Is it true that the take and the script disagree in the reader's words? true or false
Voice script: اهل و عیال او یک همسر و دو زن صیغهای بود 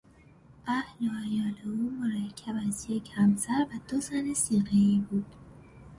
true